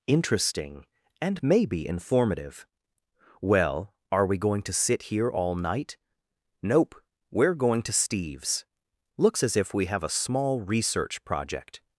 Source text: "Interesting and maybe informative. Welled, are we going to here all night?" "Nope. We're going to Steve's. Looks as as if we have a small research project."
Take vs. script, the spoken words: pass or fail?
fail